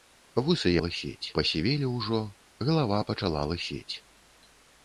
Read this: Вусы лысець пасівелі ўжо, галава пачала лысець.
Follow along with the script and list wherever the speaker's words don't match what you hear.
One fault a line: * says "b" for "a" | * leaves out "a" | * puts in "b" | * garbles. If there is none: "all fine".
all fine